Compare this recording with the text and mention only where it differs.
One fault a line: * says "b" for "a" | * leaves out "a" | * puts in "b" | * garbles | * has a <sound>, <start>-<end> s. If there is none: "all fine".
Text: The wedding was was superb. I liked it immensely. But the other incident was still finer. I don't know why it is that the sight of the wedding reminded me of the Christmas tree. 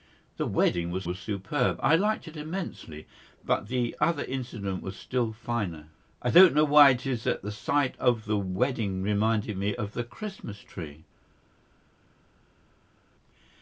all fine